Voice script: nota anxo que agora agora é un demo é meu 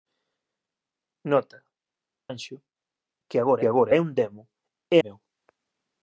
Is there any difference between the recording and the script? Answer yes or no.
no